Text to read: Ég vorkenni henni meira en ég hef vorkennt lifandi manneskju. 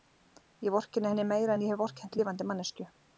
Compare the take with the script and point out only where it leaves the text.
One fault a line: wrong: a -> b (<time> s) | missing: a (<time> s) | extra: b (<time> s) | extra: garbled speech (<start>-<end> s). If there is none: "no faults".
no faults